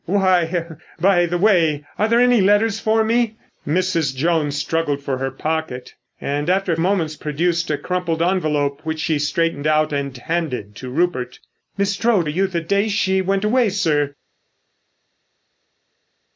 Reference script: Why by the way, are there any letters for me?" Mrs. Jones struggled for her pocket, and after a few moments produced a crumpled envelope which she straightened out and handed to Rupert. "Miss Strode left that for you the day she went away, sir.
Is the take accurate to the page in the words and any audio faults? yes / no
no